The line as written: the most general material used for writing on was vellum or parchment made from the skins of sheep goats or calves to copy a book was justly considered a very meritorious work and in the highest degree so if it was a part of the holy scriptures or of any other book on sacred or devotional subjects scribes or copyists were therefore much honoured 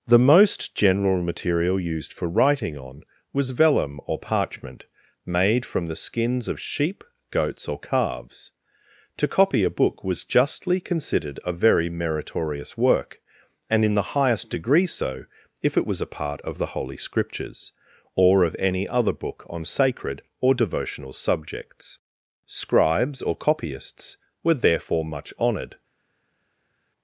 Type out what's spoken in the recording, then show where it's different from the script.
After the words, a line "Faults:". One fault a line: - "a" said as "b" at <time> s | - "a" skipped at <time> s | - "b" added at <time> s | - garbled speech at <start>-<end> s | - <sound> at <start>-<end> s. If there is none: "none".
the most general material used for writing on was vellum or parchment made from the skins of sheep goats or calves to copy a book was justly considered a very meritorious work and in the highest degree so if it was a part of the holy scriptures or of any other book on sacred or devotional subjects scribes or copyists were therefore much honoured
Faults:
none